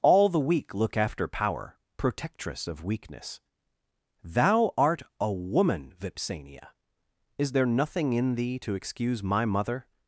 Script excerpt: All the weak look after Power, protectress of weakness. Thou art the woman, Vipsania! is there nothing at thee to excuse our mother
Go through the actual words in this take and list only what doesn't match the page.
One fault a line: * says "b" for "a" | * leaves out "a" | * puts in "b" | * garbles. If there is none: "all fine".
* says "a" for "the"
* says "in" for "at"
* says "my" for "our"